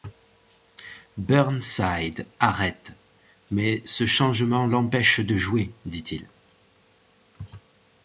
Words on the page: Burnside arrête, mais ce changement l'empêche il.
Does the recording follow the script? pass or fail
fail